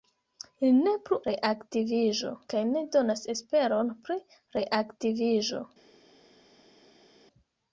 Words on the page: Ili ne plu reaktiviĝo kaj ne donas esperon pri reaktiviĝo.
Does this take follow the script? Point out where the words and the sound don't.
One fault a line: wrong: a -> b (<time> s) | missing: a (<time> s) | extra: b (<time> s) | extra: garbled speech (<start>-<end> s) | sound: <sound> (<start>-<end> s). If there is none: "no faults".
no faults